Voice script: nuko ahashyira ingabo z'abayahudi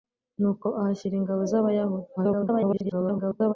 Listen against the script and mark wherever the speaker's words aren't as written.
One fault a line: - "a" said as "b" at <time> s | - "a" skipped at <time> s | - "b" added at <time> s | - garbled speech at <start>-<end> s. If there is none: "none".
- garbled speech at 2.2-3.5 s